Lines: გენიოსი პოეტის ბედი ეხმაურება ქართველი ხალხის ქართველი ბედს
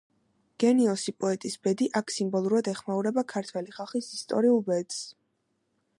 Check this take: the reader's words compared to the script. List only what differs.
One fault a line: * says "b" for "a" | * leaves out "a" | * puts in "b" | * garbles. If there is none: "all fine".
* puts in "აქ სიმბოლურად"
* says "ისტორიულ" for "ქართველი"